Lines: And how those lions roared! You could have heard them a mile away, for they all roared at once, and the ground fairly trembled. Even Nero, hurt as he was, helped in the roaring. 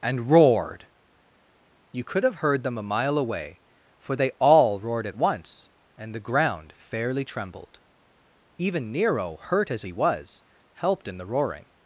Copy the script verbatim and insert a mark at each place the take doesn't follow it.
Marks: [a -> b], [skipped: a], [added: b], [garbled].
And [skipped: how those lions] roared! You could have heard them a mile away, for they all roared at once, and the ground fairly trembled. Even Nero, hurt as he was, helped in the roaring.